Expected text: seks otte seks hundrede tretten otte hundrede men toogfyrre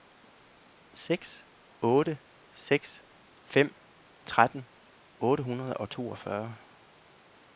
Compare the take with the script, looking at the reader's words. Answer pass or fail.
fail